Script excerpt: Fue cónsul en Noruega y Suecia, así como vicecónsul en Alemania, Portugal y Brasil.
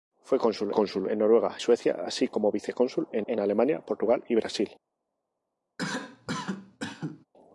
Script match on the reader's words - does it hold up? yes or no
no